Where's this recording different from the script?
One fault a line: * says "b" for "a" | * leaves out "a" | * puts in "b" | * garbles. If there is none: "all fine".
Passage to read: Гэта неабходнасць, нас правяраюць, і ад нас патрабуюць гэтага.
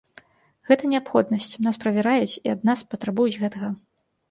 all fine